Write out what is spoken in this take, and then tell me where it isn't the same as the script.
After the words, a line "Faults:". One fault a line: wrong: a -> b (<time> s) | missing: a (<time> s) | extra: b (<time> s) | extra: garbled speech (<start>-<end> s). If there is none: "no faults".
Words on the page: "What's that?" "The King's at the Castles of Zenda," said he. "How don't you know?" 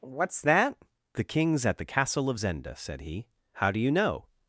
"What's that?" "The King's at the Castle of Zenda," said he. "How do you know?"
Faults:
wrong: Castles -> Castle (1.9 s)
wrong: don't -> do (3.7 s)